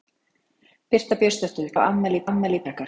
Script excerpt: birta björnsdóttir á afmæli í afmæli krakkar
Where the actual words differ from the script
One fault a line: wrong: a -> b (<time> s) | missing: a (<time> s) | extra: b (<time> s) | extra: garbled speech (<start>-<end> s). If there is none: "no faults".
no faults